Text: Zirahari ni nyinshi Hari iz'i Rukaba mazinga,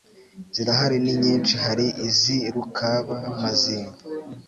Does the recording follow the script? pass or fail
pass